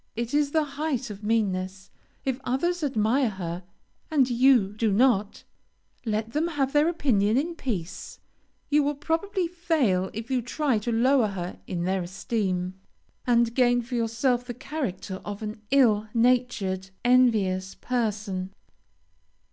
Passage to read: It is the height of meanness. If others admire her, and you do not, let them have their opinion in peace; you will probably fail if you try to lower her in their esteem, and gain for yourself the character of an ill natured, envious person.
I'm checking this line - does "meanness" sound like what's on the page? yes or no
yes